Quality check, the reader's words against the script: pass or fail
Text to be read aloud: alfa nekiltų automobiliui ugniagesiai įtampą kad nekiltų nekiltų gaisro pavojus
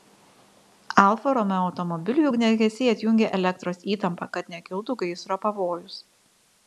fail